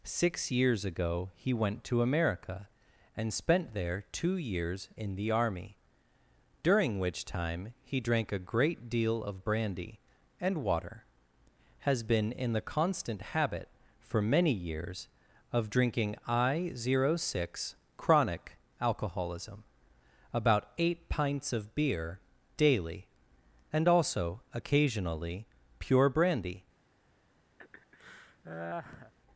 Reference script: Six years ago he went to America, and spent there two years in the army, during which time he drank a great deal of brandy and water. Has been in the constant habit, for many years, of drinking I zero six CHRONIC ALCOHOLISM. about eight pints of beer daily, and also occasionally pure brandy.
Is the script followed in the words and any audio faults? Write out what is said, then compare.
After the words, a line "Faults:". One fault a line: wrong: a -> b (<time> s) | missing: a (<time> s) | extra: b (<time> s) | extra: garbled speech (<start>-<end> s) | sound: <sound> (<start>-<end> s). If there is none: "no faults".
Six years ago he went to America, and spent there two years in the army, during which time he drank a great deal of brandy and water. Has been in the constant habit, for many years, of drinking I zero six CHRONIC ALCOHOLISM. about eight pints of beer daily, and also occasionally pure brandy.
Faults:
sound: laugh (27.6-29.1 s)